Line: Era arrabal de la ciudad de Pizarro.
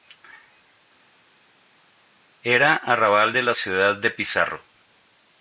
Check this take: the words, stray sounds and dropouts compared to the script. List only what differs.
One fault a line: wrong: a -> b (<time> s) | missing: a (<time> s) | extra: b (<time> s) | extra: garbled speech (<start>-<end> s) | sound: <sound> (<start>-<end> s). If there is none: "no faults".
no faults